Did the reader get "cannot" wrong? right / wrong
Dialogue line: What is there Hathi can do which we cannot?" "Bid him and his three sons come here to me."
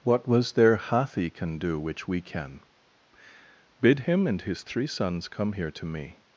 wrong